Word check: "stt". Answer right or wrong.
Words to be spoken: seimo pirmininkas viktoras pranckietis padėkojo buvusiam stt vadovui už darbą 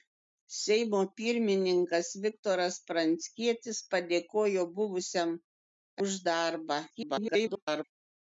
wrong